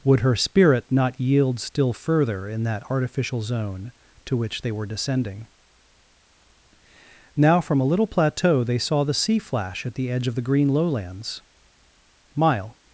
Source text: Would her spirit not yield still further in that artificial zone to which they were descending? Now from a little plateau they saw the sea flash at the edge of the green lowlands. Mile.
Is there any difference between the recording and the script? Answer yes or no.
no